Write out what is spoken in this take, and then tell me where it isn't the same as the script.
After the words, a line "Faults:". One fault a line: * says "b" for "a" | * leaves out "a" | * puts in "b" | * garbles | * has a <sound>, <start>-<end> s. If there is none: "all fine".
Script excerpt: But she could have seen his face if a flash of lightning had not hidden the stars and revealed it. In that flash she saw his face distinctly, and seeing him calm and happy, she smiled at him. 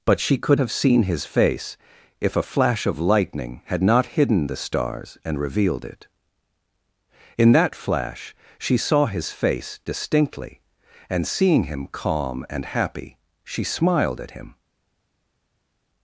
But she could have seen his face if a flash of lightning had not hidden the stars and revealed it. In that flash she saw his face distinctly, and seeing him calm and happy, she smiled at him.
Faults:
all fine